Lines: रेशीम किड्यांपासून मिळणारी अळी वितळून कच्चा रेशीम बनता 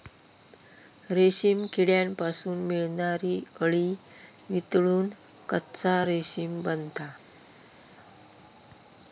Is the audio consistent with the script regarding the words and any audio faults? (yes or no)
yes